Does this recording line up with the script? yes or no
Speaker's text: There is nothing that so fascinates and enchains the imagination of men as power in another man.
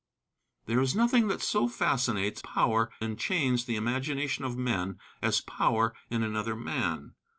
no